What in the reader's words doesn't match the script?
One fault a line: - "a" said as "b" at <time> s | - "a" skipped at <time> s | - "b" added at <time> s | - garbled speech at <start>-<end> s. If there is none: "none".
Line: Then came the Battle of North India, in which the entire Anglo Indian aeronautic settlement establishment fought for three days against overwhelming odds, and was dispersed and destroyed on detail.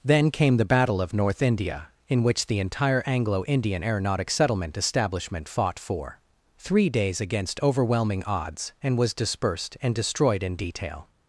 - "on" said as "in" at 10.4 s